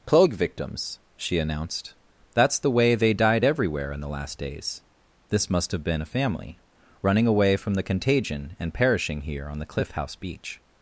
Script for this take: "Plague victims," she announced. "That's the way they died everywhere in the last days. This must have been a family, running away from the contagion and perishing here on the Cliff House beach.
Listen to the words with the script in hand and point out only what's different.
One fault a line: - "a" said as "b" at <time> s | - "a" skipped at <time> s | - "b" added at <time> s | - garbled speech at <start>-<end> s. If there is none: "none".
none